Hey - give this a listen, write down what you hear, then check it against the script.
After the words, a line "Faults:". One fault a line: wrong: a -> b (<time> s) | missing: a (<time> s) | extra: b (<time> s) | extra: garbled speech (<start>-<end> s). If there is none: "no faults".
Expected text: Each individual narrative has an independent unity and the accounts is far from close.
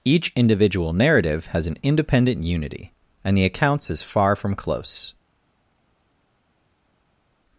Each individual narrative has an independent unity and the accounts is far from close.
Faults:
no faults